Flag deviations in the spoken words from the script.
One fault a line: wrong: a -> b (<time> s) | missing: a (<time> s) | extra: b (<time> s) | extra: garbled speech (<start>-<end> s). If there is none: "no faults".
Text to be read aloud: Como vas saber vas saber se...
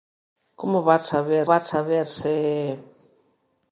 no faults